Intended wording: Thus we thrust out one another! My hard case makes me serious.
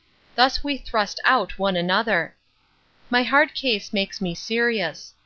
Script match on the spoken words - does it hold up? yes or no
yes